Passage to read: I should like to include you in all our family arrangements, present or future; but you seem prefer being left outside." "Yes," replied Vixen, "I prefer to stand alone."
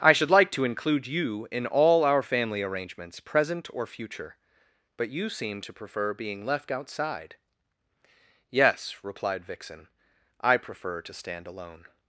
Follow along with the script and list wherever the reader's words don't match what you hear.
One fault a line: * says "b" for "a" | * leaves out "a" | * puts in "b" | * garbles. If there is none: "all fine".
* puts in "to"